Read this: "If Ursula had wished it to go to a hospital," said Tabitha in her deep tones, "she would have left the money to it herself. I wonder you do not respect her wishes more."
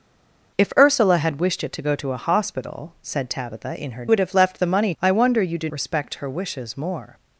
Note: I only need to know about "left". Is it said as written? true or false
true